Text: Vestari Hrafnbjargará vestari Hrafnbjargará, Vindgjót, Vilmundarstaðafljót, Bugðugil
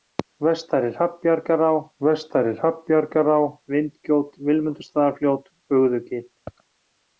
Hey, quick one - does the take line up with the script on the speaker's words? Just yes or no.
yes